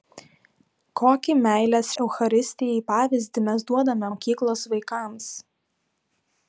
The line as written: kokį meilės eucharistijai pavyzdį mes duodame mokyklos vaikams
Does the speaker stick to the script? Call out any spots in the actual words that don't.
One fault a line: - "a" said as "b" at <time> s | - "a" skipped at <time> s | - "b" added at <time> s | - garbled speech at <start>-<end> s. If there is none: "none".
none